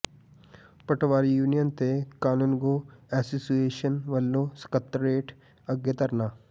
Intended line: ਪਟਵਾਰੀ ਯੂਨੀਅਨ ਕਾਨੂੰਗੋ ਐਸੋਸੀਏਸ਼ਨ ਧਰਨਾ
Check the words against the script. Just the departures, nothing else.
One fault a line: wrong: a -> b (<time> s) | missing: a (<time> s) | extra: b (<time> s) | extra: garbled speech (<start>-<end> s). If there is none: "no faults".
extra: ਤੇ (1.7 s)
extra: ਵੱਲੋਂ ਸਕੱਤਰੇਤ ਅੱਗੇ (4.1 s)